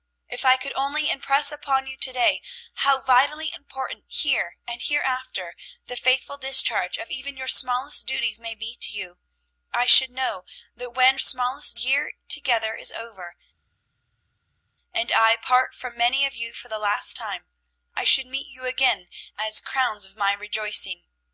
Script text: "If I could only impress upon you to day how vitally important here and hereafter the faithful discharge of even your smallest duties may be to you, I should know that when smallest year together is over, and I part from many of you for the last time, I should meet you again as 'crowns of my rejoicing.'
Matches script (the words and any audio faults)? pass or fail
pass